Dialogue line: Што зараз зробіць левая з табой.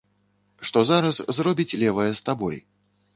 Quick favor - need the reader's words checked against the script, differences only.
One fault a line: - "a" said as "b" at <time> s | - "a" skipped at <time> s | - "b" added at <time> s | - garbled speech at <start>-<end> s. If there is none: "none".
none